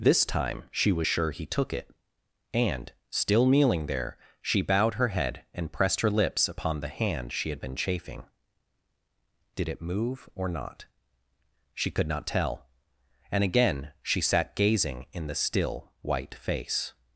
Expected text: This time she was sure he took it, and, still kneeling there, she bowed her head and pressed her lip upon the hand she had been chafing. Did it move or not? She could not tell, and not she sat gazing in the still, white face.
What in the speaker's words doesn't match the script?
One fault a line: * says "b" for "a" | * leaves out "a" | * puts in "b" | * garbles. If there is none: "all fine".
* says "lips" for "lip"
* says "again" for "not"